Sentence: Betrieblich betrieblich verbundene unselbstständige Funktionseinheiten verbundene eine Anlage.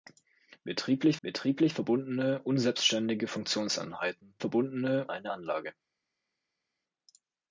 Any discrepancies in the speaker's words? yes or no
no